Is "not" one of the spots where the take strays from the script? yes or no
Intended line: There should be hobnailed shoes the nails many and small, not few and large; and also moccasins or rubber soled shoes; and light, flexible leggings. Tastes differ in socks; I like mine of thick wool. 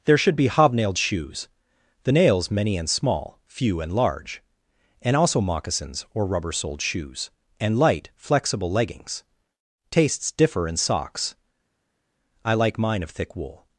yes